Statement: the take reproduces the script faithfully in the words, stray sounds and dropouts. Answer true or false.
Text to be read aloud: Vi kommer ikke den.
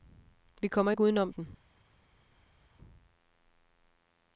false